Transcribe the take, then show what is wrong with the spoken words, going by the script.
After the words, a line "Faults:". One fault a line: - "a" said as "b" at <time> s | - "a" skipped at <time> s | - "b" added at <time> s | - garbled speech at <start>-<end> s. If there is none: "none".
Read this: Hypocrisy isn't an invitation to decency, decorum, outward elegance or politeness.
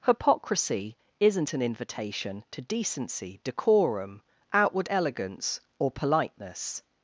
Hypocrisy isn't an invitation to decency, decorum, outward elegance or politeness.
Faults:
none